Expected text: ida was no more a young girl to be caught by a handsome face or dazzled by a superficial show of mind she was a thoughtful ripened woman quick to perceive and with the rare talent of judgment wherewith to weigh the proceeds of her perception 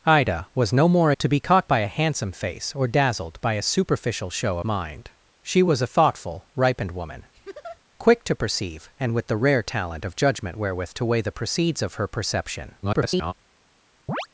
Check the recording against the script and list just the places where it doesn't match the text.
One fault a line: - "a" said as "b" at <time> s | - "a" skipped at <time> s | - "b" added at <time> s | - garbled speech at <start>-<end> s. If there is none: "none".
- "a young girl" skipped at 1.1 s
- "of" skipped at 4.6 s
- garbled speech at 12.8-13.3 s